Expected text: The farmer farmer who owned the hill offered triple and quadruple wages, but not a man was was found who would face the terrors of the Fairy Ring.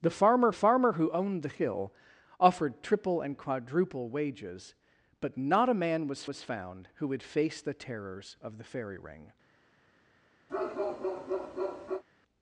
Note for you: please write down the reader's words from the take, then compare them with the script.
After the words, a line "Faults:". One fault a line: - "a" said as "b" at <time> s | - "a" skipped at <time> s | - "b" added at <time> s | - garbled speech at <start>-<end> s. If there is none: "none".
The farmer farmer who owned the hill offered triple and quadruple wages, but not a man was was found who would face the terrors of the Fairy Ring.
Faults:
none